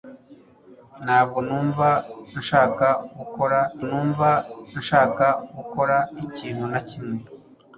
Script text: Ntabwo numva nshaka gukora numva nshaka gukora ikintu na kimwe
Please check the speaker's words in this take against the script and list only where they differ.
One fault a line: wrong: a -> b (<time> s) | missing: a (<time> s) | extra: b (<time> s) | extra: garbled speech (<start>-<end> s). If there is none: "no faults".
no faults